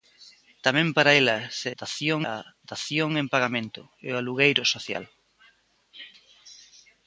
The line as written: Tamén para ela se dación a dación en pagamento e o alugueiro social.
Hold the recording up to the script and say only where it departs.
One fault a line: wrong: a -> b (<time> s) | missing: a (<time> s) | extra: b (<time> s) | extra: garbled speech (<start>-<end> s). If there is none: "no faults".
no faults